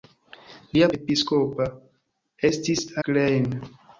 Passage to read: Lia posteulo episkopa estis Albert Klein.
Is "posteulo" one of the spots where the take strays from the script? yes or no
yes